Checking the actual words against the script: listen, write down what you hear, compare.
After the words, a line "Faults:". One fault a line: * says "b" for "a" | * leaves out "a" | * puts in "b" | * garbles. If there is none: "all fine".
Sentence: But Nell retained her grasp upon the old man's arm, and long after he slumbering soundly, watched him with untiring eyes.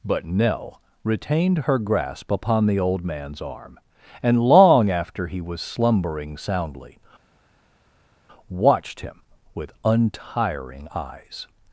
But Nell retained her grasp upon the old man's arm, and long after he was slumbering soundly, watched him with untiring eyes.
Faults:
* puts in "was"